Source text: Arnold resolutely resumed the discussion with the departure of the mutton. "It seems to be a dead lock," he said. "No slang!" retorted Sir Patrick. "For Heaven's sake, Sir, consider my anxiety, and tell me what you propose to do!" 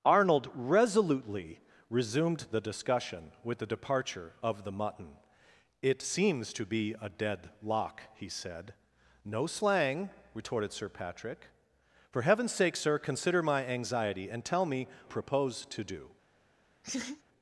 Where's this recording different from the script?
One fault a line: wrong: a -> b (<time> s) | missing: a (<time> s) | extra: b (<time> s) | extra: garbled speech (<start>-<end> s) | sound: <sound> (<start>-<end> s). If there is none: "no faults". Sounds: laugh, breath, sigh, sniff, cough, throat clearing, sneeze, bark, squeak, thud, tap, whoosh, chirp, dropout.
missing: what you (14.9 s)
sound: laugh (16.8-17.2 s)